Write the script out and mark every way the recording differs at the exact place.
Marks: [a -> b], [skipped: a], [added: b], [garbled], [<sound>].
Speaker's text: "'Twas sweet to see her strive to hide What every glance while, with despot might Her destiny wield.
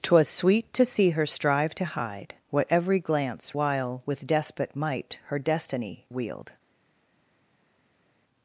"'Twas sweet to see her strive to hide What every glance while, with despot might Her destiny wield.